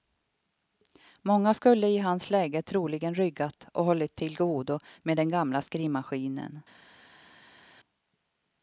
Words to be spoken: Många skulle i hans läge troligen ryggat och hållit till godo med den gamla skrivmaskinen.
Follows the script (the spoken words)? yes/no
yes